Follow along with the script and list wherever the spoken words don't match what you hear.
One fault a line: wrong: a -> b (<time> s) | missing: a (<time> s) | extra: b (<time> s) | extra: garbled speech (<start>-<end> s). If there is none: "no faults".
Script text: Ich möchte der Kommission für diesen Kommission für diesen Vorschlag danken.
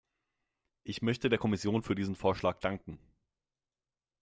missing: Kommission für diesen (2.2 s)